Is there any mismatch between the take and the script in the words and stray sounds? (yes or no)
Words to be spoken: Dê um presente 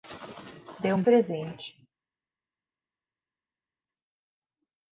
no